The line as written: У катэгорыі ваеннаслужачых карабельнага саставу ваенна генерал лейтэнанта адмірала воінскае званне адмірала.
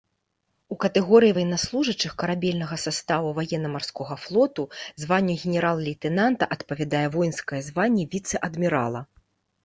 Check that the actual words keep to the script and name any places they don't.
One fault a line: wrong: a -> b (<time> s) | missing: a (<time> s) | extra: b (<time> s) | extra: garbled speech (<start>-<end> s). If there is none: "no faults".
extra: марскога флоту званню (3.7 s)
wrong: адмірала -> адпавядае (6.6 s)
extra: віцэ (8.2 s)